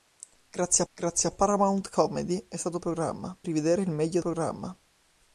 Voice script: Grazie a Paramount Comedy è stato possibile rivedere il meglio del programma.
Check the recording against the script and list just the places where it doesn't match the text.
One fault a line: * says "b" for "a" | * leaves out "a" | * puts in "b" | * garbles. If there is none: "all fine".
* puts in "grazie"
* says "programma" for "possibile"
* leaves out "del"